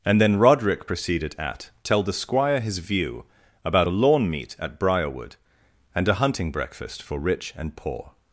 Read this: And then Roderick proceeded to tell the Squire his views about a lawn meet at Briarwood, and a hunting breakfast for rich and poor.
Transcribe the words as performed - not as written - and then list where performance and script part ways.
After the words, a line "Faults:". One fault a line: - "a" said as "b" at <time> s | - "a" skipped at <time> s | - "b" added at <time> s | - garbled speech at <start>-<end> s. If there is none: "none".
And then Roderick proceeded at tell the Squire his view about a lawn meet at Briarwood, and a hunting breakfast for rich and poor.
Faults:
- "to" said as "at" at 1.4 s
- "views" said as "view" at 2.8 s